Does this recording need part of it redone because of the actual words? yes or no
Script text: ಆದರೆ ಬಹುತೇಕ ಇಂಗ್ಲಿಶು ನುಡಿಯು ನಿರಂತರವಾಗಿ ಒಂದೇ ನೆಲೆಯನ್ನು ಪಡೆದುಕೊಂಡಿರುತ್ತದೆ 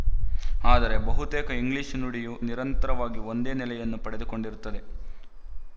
no